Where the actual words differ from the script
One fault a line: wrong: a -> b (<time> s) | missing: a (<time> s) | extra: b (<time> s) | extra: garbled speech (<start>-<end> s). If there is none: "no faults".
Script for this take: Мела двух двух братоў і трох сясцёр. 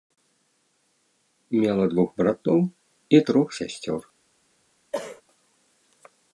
missing: двух (2.1 s)